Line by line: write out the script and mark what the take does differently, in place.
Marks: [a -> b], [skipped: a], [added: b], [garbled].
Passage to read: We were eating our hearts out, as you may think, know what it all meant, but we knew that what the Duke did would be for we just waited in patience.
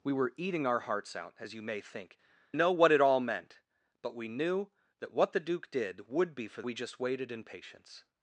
We were eating our hearts out, as you may think, know what it all meant, but we knew that what the Duke did would be for we just waited in patience.